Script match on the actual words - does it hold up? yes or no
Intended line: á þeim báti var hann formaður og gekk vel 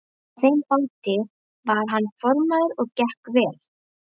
yes